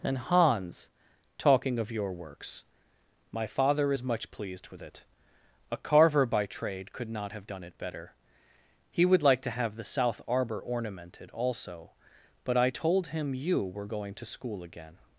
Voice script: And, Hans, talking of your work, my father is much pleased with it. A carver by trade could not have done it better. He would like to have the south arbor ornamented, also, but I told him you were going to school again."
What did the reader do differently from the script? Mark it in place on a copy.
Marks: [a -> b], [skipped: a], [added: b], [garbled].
And, Hans, talking of your [work, -> works] my father is much pleased with it. A carver by trade could not have done it better. He would like to have the south arbor ornamented, also, but I told him you were going to school again."